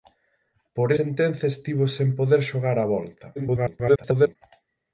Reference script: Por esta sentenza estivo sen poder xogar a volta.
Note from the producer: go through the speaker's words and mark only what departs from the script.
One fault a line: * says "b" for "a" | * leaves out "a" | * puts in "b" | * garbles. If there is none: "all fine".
* leaves out "esta"
* garbles